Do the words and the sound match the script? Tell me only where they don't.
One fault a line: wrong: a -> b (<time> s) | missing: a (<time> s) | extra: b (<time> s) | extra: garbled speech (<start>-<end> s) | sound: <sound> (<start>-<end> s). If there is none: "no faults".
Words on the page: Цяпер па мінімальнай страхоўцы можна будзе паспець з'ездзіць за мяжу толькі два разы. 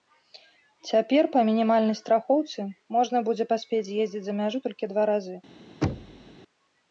sound: thud (5.8-6.4 s)